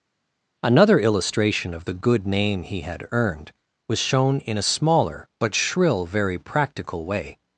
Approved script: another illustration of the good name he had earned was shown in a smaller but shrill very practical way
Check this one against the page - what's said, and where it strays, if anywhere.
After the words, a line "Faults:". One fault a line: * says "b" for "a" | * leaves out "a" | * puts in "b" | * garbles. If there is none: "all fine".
another illustration of the good name he had earned was shown in a smaller but shrill very practical way
Faults:
all fine